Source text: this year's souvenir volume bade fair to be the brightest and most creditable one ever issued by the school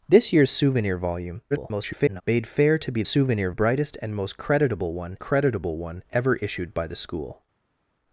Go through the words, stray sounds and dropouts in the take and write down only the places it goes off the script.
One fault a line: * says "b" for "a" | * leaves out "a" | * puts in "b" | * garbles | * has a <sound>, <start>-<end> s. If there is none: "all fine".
* garbles
* says "souvenir" for "the"
* puts in "creditable one"